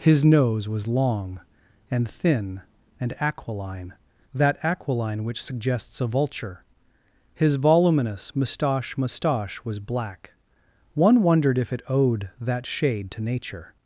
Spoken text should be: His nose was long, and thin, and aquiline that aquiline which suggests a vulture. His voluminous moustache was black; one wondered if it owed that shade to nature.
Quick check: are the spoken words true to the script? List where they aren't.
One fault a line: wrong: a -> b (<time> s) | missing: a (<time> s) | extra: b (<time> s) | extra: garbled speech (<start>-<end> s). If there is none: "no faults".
extra: moustache (9.0 s)